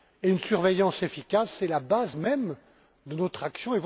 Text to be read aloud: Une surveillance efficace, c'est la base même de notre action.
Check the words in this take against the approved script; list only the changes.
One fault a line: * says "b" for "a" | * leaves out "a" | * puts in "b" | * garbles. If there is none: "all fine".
all fine